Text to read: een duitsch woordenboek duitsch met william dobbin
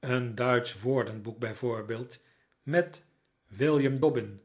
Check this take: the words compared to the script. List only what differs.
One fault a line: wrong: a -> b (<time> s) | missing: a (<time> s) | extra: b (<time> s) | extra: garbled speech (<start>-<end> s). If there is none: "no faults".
wrong: duitsch -> bijvoorbeeld (1.4 s)